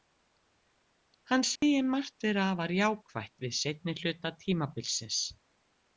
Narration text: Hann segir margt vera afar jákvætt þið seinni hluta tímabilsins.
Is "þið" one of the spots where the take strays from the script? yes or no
yes